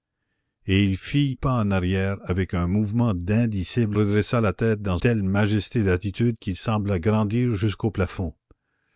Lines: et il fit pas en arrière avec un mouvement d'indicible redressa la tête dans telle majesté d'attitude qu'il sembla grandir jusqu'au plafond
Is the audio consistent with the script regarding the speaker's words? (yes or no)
yes